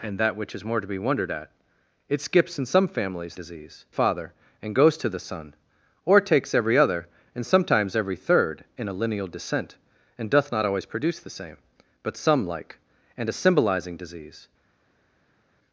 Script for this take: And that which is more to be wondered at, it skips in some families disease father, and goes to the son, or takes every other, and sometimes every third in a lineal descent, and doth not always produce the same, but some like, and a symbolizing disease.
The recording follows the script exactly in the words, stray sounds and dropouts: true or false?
true